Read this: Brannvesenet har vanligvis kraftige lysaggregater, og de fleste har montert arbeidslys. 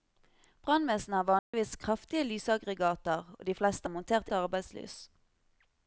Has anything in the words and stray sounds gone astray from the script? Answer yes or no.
yes